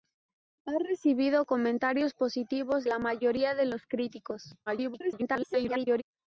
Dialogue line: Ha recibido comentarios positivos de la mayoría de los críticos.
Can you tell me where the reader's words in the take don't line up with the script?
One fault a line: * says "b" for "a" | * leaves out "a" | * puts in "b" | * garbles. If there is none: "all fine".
* leaves out "de"
* garbles